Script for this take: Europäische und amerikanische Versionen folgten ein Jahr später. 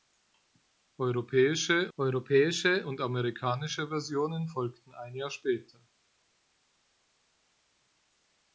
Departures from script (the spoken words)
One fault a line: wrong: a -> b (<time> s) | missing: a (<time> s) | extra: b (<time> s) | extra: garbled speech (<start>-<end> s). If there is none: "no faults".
extra: europäische (2.0 s)